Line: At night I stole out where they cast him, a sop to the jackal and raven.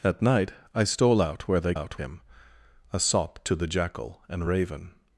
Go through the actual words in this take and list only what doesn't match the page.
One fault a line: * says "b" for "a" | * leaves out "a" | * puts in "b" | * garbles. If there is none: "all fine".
* says "out" for "cast"